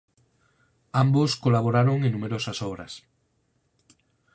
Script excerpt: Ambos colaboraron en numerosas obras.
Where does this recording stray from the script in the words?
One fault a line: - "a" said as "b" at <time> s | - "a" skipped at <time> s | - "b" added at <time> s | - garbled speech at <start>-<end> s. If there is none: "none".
none